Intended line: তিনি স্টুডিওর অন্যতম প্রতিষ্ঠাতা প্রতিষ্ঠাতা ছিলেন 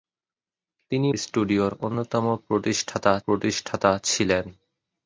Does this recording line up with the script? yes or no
yes